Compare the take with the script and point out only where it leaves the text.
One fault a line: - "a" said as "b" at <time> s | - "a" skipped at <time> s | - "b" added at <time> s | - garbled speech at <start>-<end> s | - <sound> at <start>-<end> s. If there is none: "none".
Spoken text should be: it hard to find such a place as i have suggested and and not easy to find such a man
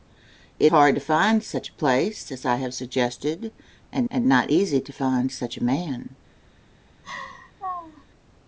- laugh at 7.0-8.0 s